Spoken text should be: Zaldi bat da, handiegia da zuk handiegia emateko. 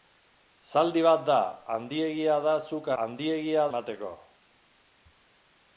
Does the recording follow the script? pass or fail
pass